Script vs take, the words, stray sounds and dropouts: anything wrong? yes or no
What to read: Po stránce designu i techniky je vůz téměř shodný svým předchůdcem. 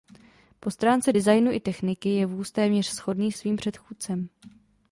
no